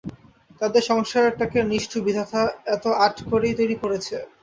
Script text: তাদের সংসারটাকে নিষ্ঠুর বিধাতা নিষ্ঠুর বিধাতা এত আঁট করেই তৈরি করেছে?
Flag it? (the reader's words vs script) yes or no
yes